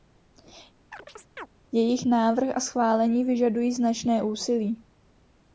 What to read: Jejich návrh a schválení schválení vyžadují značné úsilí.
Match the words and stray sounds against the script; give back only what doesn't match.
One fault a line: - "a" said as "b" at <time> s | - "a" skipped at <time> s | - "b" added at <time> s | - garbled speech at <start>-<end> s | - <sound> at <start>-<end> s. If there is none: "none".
- chirp at 0.9-1.5 s
- "schválení" skipped at 3.2 s